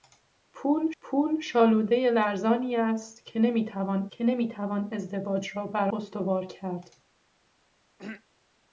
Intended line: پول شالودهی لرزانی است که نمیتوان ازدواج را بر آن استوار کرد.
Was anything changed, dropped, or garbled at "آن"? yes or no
yes